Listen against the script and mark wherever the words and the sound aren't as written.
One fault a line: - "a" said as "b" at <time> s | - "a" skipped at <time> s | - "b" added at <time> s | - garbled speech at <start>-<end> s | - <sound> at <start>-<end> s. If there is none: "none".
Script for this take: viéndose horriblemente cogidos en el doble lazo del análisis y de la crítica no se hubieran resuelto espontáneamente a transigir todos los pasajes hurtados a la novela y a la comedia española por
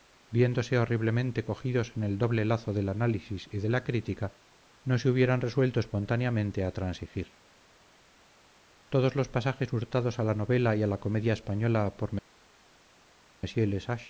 none